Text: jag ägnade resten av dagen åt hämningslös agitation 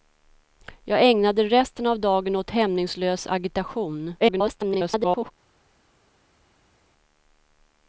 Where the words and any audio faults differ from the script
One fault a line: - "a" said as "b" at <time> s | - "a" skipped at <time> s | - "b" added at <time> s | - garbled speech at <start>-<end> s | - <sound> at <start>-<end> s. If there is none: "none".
- garbled speech at 4.2-5.3 s